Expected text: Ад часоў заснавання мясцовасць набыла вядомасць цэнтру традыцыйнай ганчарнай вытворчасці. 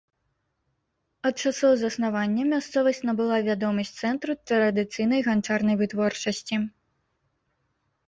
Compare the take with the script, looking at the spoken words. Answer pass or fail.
pass